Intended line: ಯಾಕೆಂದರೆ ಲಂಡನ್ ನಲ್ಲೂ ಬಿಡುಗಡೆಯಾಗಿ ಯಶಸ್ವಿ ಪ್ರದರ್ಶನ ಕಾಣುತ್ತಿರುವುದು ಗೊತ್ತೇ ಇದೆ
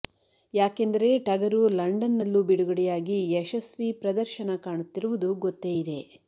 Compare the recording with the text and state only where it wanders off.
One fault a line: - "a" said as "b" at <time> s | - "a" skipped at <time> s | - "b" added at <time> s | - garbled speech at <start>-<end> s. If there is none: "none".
- "ಟಗರು" added at 1.3 s